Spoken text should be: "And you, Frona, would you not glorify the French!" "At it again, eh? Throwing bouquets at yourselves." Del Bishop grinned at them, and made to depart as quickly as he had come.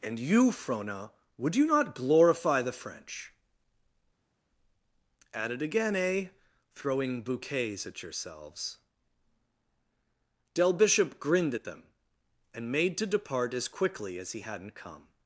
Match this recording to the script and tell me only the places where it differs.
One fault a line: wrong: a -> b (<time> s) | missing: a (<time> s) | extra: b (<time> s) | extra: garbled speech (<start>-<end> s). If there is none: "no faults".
wrong: had -> hadn't (14.4 s)